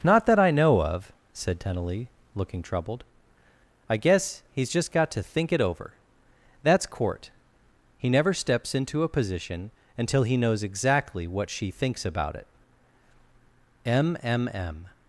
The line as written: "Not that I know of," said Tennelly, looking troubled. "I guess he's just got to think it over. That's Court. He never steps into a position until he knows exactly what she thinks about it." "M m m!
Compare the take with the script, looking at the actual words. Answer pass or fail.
pass